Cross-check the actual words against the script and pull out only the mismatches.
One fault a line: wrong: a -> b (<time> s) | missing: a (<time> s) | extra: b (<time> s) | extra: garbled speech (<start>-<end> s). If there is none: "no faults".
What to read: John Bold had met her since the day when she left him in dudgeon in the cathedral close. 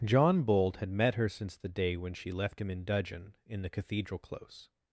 no faults